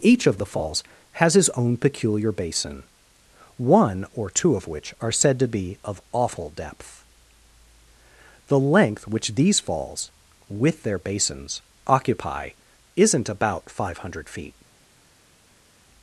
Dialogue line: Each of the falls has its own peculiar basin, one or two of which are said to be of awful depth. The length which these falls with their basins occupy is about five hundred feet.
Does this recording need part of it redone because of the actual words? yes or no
yes